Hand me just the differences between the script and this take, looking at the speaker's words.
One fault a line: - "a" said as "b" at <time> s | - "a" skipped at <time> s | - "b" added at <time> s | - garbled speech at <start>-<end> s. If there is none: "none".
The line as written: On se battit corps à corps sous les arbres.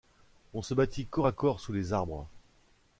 none